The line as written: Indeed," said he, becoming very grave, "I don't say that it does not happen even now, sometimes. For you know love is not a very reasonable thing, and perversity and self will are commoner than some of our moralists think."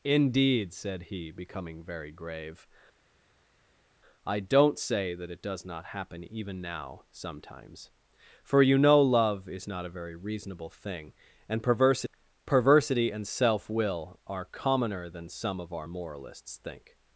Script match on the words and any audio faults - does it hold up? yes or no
no